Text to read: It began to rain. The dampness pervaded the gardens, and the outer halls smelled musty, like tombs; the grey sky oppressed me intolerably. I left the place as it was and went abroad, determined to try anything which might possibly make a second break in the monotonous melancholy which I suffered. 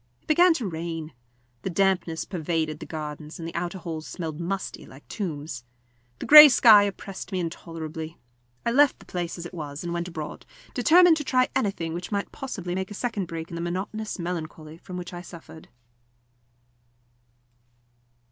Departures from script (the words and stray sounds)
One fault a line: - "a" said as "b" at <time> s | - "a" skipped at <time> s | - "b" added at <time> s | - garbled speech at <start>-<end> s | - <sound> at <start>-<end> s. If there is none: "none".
- "from" added at 14.8 s